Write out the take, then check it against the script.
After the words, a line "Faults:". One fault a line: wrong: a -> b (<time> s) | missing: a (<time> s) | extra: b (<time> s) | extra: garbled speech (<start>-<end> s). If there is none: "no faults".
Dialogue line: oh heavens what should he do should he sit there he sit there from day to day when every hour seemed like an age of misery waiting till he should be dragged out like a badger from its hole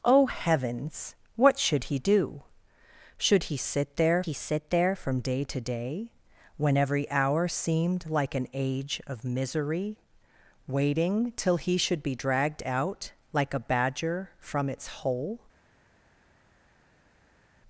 oh heavens what should he do should he sit there he sit there from day to day when every hour seemed like an age of misery waiting till he should be dragged out like a badger from its hole
Faults:
no faults